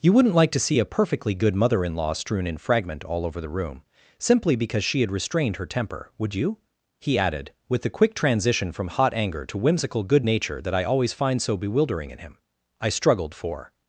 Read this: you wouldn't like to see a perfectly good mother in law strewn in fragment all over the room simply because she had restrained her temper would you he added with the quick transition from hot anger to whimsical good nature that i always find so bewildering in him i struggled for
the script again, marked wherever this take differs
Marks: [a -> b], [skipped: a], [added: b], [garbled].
you wouldn't like to see a perfectly good mother in law strewn in fragment all over the room simply because she had restrained her temper would you he added with the quick transition from hot anger to whimsical good nature that i always find so bewildering in him i struggled for